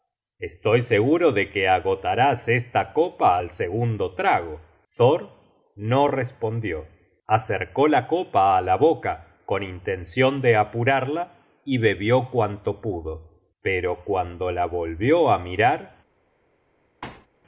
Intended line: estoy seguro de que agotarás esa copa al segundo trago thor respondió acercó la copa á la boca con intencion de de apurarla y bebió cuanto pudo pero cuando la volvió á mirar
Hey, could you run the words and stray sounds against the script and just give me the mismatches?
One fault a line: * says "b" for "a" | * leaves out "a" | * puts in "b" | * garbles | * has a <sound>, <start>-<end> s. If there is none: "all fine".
* says "esta" for "esa"
* puts in "no"
* leaves out "de"
* has a thud, 17.0-17.3 s